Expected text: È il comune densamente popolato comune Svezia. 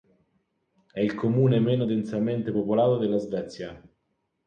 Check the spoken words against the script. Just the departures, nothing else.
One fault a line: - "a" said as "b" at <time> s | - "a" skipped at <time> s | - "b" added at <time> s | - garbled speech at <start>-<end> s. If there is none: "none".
- "meno" added at 1.6 s
- "comune" said as "della" at 3.0 s